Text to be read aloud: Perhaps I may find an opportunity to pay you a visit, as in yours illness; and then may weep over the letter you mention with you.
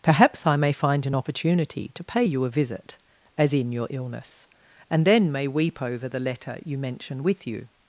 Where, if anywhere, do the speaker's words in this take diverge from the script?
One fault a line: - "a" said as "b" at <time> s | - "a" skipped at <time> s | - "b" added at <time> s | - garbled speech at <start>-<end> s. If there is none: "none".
- "yours" said as "your" at 3.7 s